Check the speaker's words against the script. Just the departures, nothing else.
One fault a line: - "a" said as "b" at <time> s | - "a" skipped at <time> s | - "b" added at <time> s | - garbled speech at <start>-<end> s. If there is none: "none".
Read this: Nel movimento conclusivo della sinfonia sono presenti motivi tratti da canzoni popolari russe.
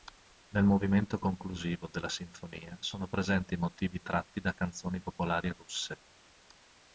none